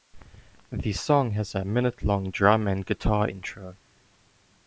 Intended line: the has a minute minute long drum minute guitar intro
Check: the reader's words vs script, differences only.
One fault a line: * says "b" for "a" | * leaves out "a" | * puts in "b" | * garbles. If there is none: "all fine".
* puts in "song"
* leaves out "minute"
* says "and" for "minute"